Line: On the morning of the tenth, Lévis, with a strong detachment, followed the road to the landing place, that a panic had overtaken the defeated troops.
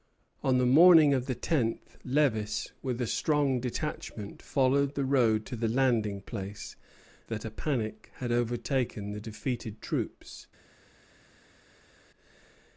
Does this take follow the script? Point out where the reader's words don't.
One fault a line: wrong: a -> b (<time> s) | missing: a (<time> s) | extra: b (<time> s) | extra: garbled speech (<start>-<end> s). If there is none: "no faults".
no faults